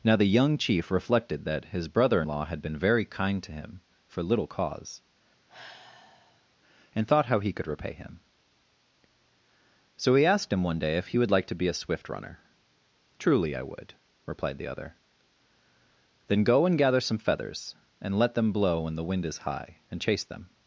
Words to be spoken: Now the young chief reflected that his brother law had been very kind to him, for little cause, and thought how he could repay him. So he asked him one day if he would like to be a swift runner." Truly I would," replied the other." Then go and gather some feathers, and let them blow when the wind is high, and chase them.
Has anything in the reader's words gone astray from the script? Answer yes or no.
no